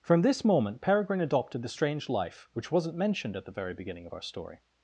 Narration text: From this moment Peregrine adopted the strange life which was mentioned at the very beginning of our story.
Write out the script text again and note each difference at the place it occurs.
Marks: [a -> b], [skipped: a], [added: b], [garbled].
From this moment Peregrine adopted the strange life which [was -> wasn't] mentioned at the very beginning of our story.